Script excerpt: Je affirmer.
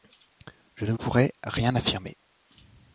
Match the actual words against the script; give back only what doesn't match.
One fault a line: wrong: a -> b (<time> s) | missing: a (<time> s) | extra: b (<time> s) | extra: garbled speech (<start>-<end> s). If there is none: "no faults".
extra: ne pourrais rien (0.8 s)